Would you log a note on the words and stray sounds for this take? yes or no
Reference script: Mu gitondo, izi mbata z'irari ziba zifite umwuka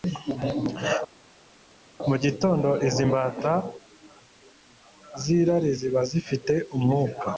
no